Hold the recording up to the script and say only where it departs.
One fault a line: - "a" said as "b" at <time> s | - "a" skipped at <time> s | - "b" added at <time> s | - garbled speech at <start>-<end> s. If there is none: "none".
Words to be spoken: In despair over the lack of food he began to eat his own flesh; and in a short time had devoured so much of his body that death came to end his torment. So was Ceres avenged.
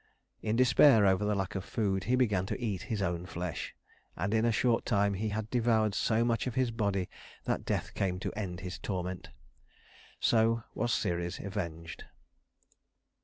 - "he" added at 5.1 s